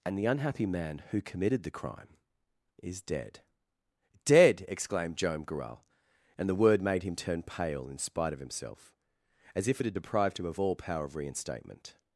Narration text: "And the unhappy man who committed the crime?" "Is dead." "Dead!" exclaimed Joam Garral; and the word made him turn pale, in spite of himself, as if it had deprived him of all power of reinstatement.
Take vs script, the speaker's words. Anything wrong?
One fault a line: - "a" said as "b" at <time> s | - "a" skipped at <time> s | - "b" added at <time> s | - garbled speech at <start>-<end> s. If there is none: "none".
none